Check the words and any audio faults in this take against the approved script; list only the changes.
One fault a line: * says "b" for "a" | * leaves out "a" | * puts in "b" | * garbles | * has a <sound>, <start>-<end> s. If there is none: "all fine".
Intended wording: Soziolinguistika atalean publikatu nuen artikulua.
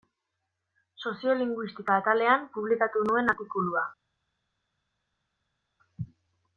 all fine